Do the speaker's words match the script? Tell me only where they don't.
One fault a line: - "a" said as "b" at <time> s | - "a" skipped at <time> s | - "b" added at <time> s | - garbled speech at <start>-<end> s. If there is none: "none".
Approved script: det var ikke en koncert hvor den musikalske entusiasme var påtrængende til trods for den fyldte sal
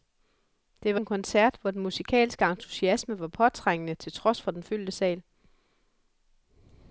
- "ikke" skipped at 1.0 s